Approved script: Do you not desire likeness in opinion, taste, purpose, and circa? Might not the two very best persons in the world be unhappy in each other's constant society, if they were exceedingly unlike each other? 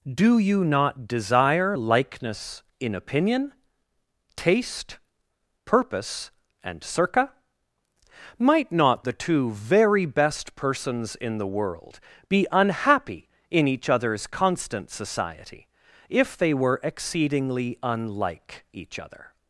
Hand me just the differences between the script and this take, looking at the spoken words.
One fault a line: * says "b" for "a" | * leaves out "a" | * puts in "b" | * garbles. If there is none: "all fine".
all fine